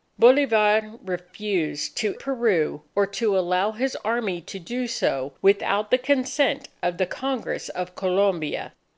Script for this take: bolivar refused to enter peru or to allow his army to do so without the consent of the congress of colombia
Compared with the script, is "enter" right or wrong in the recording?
wrong